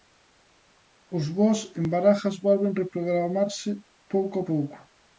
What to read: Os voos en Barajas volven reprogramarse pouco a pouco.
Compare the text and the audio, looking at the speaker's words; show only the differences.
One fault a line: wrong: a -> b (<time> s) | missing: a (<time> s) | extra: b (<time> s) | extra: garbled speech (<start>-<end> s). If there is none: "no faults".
no faults